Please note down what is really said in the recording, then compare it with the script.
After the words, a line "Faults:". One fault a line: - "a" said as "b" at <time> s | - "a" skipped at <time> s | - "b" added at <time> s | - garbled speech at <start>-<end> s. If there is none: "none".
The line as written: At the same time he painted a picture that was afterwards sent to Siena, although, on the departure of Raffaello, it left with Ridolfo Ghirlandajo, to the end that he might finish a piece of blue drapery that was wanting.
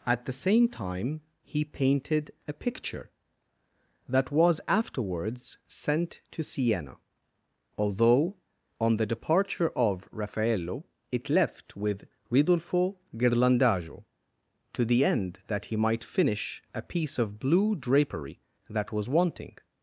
At the same time he painted a picture that was afterwards sent to Siena, although, on the departure of Raffaello, it left with Ridolfo Ghirlandajo, to the end that he might finish a piece of blue drapery that was wanting.
Faults:
none